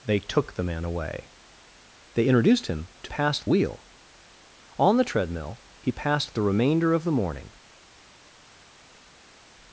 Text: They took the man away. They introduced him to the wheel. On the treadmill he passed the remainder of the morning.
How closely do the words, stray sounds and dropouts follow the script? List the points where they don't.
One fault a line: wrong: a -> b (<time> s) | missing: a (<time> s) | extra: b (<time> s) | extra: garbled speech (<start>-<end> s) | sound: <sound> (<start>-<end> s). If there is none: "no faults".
wrong: the -> passed (3.1 s)